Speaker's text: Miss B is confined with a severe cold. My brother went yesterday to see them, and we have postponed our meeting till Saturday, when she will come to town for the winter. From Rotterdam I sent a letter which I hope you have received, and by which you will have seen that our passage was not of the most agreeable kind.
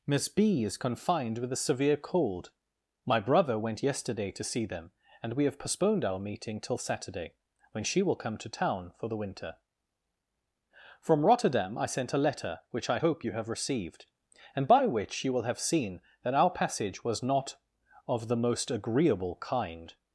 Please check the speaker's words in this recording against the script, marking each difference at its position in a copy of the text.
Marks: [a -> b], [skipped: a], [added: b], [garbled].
Miss B is confined with a severe cold. My brother went yesterday to see them, and we have postponed our meeting till Saturday, when she will come to town for the winter. From Rotterdam I sent a letter which I hope you have received, and by which you will have seen that our passage was not of the most agreeable kind.